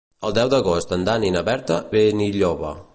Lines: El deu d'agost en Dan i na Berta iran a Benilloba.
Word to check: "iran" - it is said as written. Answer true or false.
false